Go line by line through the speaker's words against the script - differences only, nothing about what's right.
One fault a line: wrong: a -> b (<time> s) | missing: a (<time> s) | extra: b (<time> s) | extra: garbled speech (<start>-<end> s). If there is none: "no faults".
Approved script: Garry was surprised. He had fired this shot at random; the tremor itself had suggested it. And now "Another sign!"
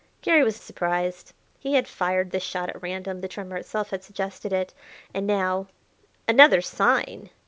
no faults